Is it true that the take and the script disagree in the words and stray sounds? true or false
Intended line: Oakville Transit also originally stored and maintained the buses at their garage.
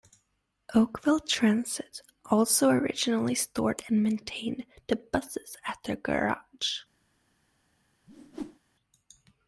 true